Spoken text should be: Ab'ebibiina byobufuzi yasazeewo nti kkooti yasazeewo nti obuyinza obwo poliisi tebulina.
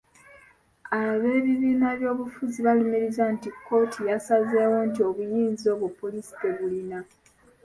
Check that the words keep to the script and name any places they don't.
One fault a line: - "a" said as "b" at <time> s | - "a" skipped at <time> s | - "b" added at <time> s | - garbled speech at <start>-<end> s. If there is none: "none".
- "yasazeewo" said as "balumiriza" at 2.6 s